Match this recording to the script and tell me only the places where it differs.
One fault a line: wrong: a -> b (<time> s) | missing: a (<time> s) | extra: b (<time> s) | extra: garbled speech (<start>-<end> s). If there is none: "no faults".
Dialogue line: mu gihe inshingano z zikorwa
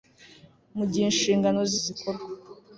no faults